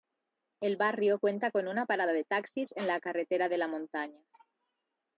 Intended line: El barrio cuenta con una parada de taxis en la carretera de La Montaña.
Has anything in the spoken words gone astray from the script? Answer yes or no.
no